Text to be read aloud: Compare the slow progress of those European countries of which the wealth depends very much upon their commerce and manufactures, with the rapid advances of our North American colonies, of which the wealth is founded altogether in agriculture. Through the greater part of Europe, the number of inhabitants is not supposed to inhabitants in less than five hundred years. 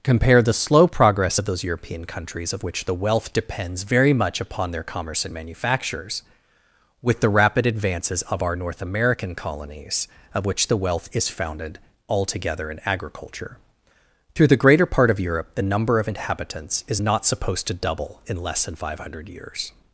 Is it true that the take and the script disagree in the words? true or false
true